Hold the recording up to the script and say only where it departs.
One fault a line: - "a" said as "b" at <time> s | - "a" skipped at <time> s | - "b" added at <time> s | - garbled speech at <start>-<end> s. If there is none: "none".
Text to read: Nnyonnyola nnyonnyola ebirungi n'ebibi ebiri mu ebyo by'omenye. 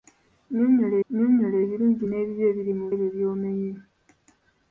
none